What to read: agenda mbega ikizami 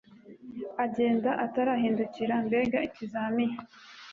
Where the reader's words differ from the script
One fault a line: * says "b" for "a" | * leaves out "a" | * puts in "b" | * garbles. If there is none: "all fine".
* puts in "atarahindukira"